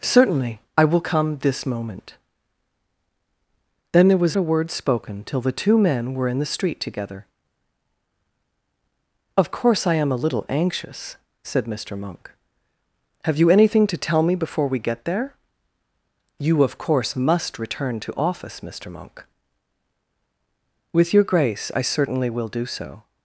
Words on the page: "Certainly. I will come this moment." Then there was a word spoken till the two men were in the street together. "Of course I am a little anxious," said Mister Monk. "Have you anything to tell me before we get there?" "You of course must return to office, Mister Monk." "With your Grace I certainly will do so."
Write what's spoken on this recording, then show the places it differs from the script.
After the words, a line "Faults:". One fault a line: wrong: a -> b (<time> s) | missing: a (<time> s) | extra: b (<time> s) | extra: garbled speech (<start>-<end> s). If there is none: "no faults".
"Certainly. I will come this moment." Then there was a word spoken till the two men were in the street together. "Of course I am a little anxious," said Mister Monk. "Have you anything to tell me before we get there?" "You of course must return to office, Mister Monk." "With your Grace I certainly will do so."
Faults:
no faults